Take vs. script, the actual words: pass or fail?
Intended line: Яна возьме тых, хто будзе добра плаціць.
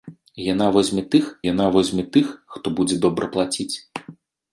fail